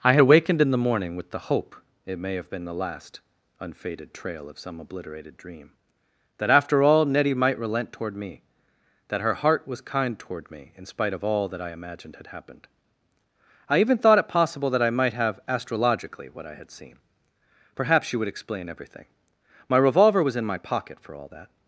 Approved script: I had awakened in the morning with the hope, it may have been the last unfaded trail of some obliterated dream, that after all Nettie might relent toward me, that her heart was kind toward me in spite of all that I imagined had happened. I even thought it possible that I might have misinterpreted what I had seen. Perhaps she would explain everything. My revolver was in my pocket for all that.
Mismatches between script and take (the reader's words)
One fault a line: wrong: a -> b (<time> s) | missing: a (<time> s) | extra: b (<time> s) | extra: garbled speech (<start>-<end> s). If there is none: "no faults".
wrong: misinterpreted -> astrologically (15.5 s)